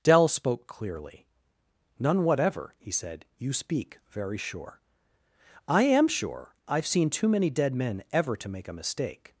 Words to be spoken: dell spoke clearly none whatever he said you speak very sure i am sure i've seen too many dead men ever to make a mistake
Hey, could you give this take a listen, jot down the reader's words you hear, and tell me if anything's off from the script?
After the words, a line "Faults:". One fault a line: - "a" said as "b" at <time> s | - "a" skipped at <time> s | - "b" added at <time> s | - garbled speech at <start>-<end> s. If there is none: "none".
dell spoke clearly none whatever he said you speak very sure i am sure i've seen too many dead men ever to make a mistake
Faults:
none